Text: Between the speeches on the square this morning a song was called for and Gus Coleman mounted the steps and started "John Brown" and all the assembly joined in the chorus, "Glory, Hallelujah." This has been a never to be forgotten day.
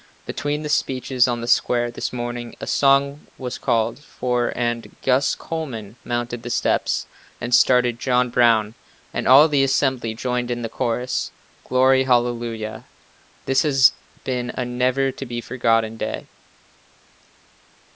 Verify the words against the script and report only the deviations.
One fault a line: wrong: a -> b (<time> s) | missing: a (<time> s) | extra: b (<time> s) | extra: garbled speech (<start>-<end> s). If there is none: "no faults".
no faults